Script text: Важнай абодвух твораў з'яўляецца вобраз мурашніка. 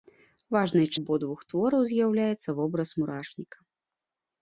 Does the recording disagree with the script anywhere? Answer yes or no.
no